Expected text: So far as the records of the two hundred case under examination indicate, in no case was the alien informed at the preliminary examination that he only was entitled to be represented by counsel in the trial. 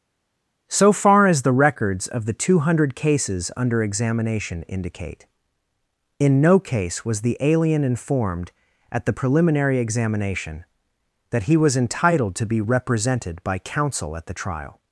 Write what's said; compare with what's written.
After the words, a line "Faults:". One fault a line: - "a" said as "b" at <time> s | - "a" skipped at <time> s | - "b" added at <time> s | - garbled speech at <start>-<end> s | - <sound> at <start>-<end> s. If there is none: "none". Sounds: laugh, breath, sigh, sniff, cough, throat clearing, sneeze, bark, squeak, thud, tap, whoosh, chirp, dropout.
So far as the records of the two hundred cases under examination indicate, in no case was the alien informed at the preliminary examination that he was entitled to be represented by counsel at the trial.
Faults:
- "case" said as "cases" at 2.9 s
- "only" skipped at 11.6 s
- "in" said as "at" at 14.1 s